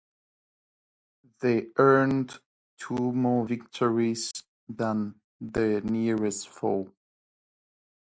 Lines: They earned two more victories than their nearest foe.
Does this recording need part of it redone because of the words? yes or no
no